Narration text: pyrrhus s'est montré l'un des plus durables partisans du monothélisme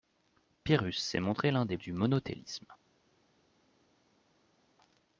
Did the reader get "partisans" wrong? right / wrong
wrong